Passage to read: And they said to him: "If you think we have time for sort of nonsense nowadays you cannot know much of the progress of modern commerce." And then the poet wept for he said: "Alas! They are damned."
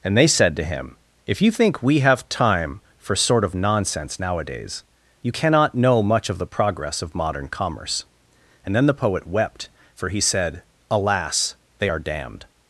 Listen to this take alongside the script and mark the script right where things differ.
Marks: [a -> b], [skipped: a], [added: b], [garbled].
And they said to him: "If you think we have time for sort of nonsense nowadays you cannot know much of the progress of modern commerce." And then the poet wept for he said: "Alas! They are damned."